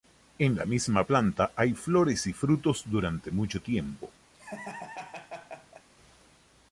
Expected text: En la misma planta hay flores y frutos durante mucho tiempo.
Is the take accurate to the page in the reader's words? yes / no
yes